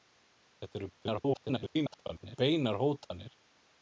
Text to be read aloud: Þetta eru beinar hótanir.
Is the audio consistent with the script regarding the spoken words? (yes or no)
no